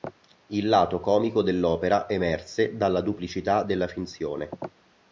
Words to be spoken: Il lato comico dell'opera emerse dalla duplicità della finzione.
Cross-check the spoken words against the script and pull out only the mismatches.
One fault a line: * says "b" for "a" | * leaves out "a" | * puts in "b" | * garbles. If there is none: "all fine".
all fine